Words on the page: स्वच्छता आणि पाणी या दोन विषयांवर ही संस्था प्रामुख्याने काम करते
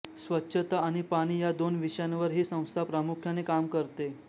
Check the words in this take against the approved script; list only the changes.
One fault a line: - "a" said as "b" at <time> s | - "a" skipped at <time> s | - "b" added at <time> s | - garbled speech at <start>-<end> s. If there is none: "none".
none